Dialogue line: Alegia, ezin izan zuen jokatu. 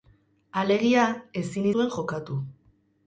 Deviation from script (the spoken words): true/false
true